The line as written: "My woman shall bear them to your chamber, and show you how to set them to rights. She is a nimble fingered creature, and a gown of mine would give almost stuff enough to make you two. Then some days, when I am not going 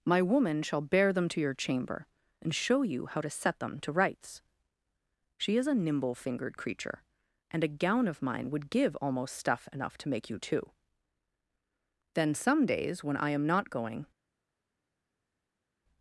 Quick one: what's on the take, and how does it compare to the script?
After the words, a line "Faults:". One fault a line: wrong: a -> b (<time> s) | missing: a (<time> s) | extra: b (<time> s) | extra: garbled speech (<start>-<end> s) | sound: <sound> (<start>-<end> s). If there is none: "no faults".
"My woman shall bear them to your chamber, and show you how to set them to rights. She is a nimble fingered creature, and a gown of mine would give almost stuff enough to make you two. Then some days, when I am not going
Faults:
no faults